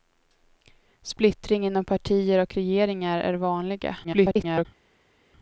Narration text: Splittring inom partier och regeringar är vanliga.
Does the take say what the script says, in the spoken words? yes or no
no